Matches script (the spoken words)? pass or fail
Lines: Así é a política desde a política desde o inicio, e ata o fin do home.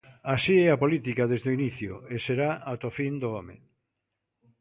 fail